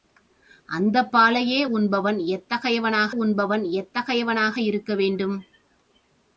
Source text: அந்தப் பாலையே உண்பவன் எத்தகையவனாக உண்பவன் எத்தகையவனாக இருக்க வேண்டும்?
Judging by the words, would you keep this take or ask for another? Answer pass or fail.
pass